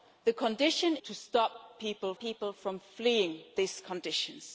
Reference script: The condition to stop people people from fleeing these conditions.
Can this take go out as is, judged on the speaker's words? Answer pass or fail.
pass